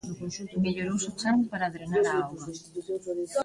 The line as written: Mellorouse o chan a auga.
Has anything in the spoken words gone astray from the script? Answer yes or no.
yes